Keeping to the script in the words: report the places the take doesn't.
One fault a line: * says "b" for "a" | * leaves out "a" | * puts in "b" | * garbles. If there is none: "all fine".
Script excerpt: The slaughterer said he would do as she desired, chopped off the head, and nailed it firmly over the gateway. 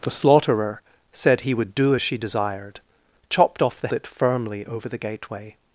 * leaves out "head and nailed"